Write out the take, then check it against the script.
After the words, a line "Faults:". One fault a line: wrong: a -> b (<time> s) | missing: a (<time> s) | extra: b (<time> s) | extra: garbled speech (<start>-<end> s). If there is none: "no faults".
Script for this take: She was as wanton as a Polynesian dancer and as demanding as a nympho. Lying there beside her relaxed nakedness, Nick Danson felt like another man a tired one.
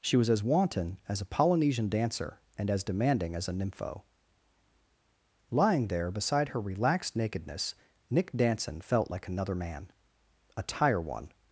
She was as wanton as a Polynesian dancer and as demanding as a nympho. Lying there beside her relaxed nakedness, Nick Danson felt like another man a tire one.
Faults:
wrong: tired -> tire (10.6 s)